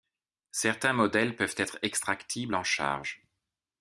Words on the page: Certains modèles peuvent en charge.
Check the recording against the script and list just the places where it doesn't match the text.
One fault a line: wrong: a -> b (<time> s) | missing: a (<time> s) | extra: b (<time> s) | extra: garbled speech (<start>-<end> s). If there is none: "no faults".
extra: être extractibles (1.6 s)